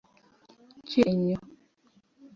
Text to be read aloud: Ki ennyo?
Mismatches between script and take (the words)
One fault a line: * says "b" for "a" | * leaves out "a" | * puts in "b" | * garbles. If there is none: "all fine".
all fine